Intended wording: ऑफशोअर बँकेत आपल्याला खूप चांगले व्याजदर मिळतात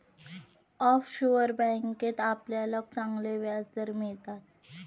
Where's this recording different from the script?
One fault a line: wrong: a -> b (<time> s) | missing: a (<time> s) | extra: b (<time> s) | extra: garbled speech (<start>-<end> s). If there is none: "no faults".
missing: खूप (2.8 s)